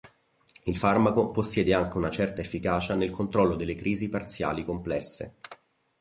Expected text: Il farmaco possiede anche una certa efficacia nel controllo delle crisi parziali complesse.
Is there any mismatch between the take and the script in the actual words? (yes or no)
no